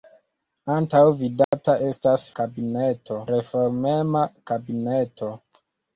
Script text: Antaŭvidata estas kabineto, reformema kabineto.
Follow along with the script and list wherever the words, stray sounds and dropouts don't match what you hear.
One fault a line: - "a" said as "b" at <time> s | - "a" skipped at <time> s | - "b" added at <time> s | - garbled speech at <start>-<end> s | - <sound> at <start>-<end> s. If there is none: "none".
- dropout at 1.4-1.5 s